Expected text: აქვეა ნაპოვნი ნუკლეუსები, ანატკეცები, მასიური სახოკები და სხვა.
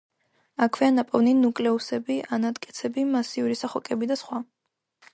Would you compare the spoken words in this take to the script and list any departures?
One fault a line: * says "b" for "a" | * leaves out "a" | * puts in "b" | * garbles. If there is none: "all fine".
all fine